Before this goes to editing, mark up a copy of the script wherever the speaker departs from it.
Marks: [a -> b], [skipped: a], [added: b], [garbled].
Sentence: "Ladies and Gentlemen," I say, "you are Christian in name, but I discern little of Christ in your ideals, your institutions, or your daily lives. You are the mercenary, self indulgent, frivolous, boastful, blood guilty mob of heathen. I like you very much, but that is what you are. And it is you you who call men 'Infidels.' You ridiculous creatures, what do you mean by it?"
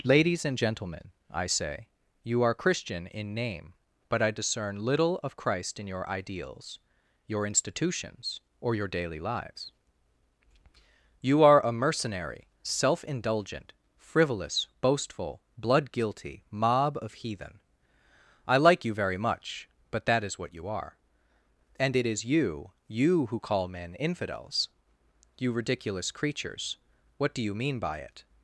"Ladies and Gentlemen," I say, "you are Christian in name, but I discern little of Christ in your ideals, your institutions, or your daily lives. You are [the -> a] mercenary, self indulgent, frivolous, boastful, blood guilty mob of heathen. I like you very much, but that is what you are. And it is you you who call men 'Infidels.' You ridiculous creatures, what do you mean by it?"